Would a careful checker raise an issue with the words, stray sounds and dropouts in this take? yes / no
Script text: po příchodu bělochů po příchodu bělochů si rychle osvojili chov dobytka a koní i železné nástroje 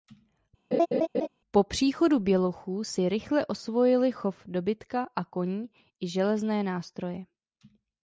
yes